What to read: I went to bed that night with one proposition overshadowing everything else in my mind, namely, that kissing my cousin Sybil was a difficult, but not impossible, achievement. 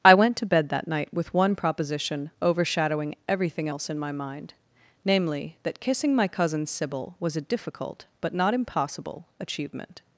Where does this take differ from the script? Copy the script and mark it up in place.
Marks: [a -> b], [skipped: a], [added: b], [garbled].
I went to bed that night with one proposition overshadowing everything else in my mind, namely, that kissing my cousin Sybil was a difficult, but not impossible, achievement.